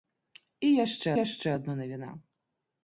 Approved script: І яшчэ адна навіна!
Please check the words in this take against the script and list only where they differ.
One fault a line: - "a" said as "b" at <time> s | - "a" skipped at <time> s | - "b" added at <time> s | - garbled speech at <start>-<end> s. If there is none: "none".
- "яшчэ" added at 1.2 s